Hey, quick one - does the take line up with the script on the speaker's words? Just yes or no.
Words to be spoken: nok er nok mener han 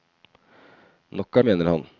no